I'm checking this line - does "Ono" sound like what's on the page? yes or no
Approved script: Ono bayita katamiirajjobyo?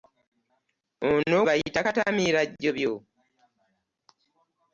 yes